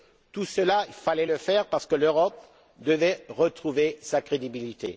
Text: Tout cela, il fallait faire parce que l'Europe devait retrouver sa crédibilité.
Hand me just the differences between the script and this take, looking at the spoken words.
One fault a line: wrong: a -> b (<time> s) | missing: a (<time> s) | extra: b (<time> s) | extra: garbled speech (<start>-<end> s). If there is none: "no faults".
extra: le (1.2 s)